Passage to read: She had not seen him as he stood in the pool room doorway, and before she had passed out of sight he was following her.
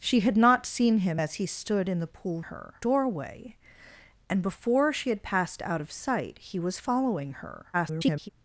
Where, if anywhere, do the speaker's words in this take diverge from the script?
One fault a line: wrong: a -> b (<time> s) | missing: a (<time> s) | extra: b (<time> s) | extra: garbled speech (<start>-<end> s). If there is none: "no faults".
wrong: room -> her (2.4 s)
extra: garbled speech (7.7-8.3 s)